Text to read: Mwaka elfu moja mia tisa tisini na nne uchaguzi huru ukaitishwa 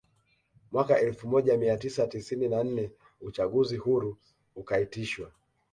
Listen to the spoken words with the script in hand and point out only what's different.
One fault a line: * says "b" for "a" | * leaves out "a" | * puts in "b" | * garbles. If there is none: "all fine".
all fine